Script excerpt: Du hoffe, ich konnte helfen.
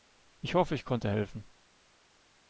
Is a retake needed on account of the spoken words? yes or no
yes